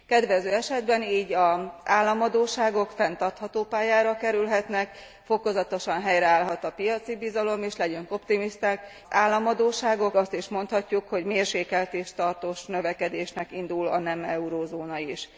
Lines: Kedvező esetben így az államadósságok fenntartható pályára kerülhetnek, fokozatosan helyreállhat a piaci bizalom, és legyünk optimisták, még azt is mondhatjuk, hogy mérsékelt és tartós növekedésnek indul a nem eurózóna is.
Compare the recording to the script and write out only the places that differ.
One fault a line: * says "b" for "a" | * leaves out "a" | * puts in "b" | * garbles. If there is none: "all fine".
* says "államadósságok" for "még"